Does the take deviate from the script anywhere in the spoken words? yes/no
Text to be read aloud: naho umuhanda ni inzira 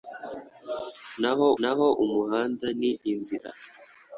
yes